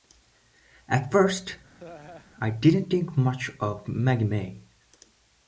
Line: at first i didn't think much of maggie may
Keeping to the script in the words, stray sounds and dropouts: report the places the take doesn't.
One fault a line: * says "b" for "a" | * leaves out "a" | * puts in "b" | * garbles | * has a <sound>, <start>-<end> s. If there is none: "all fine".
* has a laugh, 1.8-2.3 s